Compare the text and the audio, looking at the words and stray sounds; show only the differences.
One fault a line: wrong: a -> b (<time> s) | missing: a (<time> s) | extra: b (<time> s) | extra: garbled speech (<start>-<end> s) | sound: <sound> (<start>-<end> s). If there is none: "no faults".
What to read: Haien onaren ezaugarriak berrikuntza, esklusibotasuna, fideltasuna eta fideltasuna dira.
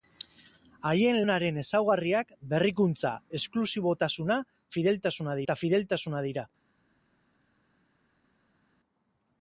no faults